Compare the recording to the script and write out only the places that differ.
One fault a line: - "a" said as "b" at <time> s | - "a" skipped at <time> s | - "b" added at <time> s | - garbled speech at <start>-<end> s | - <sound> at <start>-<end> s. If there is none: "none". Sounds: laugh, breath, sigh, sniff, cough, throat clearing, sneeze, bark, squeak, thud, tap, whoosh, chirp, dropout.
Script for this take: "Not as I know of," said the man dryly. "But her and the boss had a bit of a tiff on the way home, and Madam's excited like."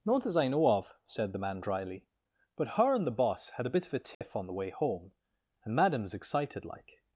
- dropout at 4.1-4.2 s